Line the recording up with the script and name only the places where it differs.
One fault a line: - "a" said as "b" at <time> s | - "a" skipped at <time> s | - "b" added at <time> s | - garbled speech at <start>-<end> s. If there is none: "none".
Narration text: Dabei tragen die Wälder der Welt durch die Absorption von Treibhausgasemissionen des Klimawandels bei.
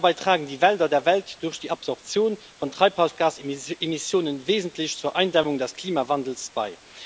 - "wesentlich zur Eindämmung" added at 4.5 s